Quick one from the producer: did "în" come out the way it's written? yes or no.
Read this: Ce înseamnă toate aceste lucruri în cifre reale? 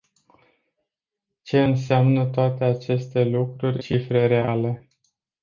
no